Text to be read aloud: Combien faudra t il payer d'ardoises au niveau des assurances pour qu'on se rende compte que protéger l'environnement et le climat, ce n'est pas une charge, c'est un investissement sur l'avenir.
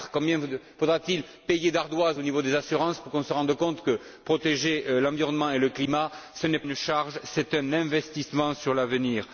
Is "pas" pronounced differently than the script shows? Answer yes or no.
yes